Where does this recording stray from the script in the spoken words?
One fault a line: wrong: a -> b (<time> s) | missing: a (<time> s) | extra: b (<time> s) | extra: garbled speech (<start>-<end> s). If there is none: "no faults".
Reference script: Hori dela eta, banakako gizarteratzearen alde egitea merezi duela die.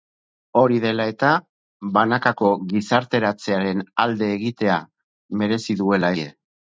no faults